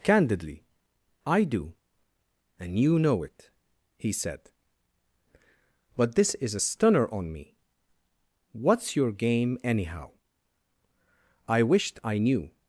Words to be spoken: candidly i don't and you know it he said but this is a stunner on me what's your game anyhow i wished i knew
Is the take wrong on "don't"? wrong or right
wrong